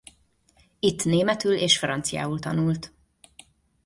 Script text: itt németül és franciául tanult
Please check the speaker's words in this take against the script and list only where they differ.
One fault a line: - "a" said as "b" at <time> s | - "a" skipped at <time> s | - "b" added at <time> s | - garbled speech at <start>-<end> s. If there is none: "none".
none